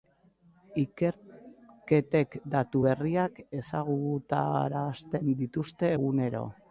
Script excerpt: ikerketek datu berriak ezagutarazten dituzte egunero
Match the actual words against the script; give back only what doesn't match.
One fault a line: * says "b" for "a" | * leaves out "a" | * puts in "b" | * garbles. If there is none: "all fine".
all fine